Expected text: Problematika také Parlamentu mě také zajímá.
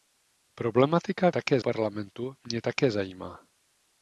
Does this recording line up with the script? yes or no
yes